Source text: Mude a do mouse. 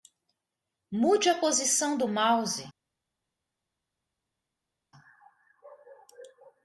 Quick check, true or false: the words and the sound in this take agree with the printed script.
false